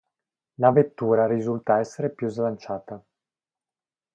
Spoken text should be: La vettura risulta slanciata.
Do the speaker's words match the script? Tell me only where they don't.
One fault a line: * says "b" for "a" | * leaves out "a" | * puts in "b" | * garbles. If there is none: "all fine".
* puts in "essere più"